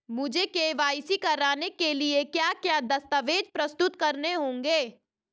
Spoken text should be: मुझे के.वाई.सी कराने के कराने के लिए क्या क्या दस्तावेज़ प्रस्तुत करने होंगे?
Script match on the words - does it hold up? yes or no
no